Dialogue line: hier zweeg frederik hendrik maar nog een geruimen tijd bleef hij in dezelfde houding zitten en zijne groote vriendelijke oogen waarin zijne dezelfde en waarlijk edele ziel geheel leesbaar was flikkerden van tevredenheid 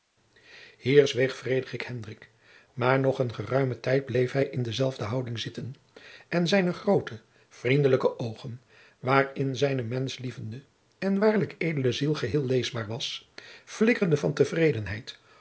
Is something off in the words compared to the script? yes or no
yes